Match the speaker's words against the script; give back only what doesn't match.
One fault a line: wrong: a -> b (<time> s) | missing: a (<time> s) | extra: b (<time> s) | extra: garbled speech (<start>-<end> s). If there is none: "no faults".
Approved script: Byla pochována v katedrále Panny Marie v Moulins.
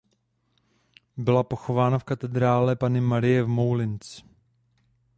no faults